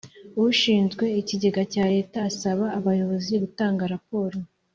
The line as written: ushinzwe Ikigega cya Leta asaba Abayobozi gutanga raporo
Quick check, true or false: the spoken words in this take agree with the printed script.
true